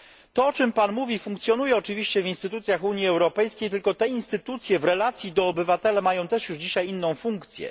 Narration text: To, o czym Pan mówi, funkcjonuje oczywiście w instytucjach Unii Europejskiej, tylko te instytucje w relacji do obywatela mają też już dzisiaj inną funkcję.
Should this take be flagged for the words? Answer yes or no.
no